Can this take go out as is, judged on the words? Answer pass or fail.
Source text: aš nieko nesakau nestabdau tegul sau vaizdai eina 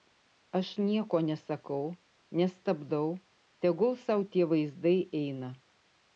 fail